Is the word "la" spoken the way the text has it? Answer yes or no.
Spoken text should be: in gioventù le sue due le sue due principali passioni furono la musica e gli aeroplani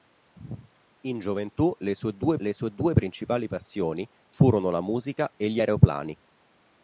yes